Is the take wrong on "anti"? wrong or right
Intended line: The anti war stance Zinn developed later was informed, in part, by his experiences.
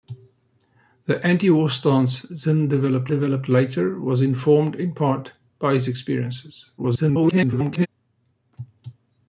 right